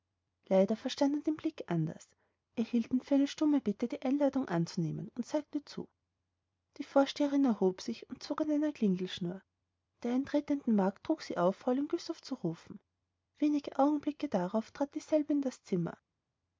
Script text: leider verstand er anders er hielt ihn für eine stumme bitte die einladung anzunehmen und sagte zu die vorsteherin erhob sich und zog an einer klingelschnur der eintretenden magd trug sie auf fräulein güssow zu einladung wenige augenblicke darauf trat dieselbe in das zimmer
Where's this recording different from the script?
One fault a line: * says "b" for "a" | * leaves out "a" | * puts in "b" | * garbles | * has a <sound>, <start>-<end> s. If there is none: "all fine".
* puts in "den blick"
* says "rufen" for "einladung"